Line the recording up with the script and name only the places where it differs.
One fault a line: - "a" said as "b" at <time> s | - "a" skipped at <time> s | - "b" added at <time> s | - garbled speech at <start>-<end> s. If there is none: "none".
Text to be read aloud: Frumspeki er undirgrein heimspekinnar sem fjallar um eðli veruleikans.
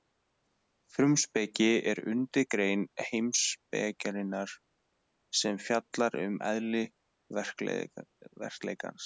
none